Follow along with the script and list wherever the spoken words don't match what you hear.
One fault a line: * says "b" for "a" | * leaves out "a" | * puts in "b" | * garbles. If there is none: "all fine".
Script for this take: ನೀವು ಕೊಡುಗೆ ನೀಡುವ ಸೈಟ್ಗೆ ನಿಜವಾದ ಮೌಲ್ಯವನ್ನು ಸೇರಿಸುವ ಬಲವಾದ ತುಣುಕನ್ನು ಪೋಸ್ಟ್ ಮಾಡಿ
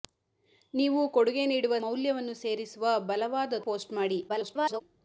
* leaves out "ಸೈಟ್ಗೆ ನಿಜವಾದ"
* leaves out "ತುಣುಕನ್ನು"
* garbles